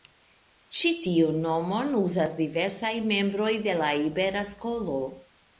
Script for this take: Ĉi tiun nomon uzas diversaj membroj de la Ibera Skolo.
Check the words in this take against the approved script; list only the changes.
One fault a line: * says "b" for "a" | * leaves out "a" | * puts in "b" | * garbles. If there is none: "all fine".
all fine